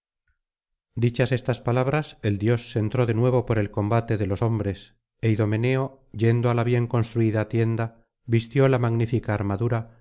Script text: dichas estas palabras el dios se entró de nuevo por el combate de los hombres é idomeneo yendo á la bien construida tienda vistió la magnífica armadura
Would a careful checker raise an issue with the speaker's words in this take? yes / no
no